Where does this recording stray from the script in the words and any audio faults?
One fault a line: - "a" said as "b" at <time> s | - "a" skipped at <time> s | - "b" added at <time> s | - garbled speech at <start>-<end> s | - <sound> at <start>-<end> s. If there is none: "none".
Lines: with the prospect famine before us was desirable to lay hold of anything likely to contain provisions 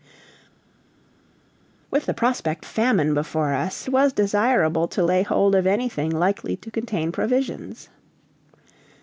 none